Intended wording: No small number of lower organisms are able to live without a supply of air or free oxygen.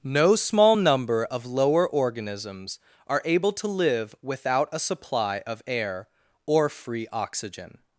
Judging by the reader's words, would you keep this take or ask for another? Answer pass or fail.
pass